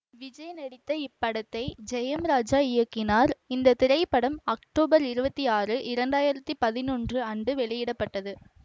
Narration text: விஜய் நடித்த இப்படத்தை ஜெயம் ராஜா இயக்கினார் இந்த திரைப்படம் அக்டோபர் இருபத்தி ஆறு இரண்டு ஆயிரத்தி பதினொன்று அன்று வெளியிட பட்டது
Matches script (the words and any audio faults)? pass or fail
pass